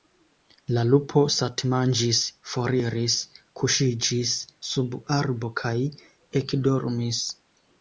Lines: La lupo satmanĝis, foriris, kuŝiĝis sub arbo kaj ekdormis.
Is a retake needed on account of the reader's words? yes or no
no